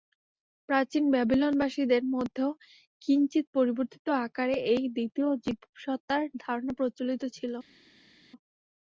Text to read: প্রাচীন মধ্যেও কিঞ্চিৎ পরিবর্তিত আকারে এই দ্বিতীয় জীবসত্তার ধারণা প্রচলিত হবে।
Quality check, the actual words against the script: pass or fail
fail